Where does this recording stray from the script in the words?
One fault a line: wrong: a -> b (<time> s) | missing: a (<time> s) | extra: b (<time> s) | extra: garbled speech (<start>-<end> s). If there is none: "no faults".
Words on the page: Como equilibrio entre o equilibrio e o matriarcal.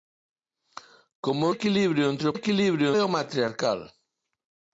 no faults